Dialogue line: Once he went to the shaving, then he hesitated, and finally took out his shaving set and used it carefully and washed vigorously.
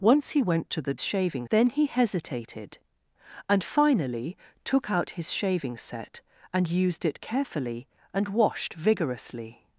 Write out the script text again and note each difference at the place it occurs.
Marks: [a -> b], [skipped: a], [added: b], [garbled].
Once he went to the shaving, then he hesitated, and finally took out his shaving set and used it carefully and washed vigorously.